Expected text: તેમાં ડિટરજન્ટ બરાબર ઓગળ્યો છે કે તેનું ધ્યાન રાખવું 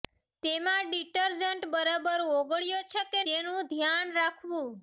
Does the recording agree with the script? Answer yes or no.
yes